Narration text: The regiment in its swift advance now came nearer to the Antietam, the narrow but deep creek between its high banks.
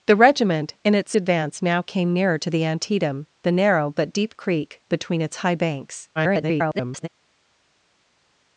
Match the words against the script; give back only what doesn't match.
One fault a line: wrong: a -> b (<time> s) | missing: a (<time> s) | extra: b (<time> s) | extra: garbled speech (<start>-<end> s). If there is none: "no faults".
missing: swift (1.1 s)
extra: garbled speech (6.2-7.1 s)